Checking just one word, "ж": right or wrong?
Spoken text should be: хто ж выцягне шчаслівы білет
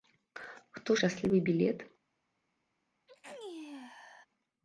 wrong